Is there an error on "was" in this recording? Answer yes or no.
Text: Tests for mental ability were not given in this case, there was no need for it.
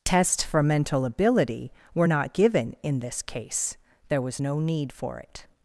no